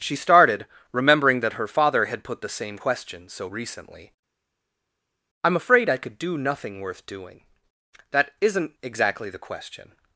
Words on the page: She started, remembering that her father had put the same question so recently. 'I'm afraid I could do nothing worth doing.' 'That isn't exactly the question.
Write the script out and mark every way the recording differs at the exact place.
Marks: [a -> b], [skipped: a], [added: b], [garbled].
She started, remembering that her father had put the same question so recently. 'I'm afraid I could do nothing worth doing.' 'That isn't exactly the question.